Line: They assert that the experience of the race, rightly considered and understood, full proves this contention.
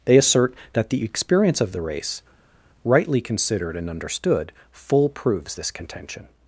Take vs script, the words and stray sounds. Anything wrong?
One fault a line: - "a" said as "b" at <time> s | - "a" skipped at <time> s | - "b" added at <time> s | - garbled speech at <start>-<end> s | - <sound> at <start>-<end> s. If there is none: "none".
none